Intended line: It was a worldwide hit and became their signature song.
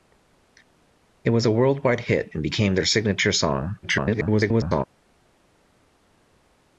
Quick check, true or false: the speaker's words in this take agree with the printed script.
false